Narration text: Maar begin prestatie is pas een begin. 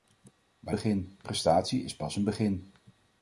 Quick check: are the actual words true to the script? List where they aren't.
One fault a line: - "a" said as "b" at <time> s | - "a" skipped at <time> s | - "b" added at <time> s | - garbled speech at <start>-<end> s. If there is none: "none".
none